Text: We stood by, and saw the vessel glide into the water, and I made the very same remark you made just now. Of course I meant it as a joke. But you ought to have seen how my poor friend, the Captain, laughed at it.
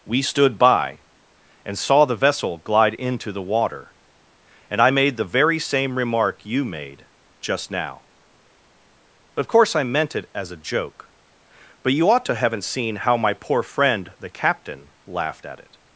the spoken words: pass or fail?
fail